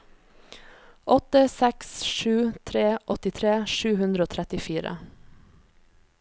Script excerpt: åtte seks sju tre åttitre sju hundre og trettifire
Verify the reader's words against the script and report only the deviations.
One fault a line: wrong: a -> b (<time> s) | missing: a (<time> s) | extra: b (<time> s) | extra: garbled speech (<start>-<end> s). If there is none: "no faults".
no faults